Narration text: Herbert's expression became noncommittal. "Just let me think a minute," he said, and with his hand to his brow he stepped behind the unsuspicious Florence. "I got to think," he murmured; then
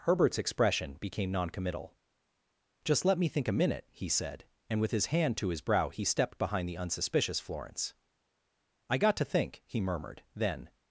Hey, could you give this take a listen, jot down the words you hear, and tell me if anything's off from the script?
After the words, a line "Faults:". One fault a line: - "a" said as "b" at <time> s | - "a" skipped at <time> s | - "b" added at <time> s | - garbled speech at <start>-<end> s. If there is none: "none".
Herbert's expression became noncommittal. "Just let me think a minute," he said, and with his hand to his brow he stepped behind the unsuspicious Florence. "I got to think," he murmured; then
Faults:
none